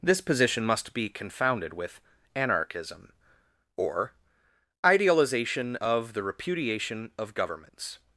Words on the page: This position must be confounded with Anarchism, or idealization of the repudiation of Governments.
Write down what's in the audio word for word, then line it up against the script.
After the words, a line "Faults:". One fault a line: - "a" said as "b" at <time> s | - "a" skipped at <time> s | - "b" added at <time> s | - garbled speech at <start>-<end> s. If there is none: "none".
This position must be confounded with Anarchism, or idealization of the repudiation of Governments.
Faults:
none